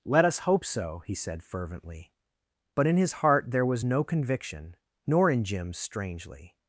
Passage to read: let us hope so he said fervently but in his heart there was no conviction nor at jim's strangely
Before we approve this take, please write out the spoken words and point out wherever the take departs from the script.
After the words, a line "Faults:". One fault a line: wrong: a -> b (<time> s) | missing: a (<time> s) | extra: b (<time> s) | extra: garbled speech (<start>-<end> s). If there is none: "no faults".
let us hope so he said fervently but in his heart there was no conviction nor in jim's strangely
Faults:
wrong: at -> in (5.3 s)